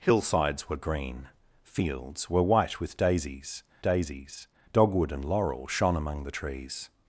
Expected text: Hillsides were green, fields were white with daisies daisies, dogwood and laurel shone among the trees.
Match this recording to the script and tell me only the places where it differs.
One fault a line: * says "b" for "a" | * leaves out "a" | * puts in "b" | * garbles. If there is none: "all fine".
all fine